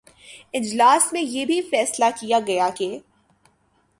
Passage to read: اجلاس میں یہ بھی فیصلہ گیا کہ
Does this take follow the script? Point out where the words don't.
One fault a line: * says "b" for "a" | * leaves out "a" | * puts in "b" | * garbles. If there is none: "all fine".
* puts in "کیا"